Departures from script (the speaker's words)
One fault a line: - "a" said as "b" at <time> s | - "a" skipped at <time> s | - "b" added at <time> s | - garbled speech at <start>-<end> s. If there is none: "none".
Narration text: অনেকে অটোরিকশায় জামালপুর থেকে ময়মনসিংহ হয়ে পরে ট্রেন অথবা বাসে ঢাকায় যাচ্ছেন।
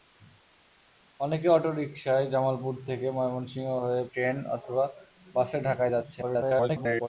- "পরে" skipped at 4.0 s
- garbled speech at 6.2-7.1 s